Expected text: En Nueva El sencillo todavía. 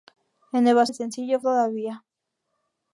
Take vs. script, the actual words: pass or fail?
pass